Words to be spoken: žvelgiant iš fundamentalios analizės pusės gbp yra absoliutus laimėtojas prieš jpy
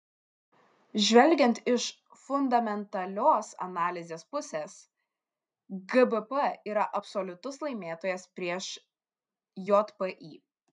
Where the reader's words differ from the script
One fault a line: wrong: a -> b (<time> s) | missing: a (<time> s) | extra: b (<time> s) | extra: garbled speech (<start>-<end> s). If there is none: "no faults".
no faults